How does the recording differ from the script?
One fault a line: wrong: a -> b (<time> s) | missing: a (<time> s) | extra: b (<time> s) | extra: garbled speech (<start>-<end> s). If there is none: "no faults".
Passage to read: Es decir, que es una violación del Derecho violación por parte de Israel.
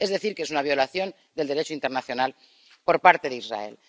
wrong: violación -> internacional (1.8 s)